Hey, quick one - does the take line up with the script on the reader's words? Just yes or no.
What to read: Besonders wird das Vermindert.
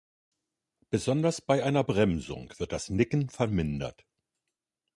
no